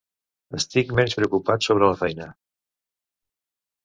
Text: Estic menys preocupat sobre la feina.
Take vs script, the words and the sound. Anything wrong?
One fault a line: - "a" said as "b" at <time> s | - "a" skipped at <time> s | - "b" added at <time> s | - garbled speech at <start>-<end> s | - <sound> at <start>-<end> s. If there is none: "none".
none